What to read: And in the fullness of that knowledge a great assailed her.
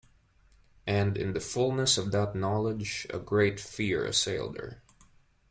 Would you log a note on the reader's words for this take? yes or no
yes